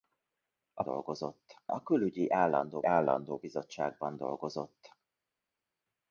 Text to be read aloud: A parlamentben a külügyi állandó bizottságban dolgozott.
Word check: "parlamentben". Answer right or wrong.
wrong